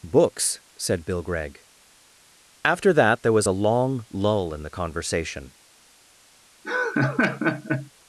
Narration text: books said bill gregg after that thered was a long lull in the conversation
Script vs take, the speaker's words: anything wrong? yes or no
yes